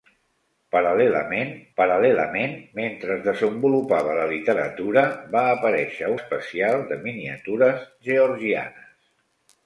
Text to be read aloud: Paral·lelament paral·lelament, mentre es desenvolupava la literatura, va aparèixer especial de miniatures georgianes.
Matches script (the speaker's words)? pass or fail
pass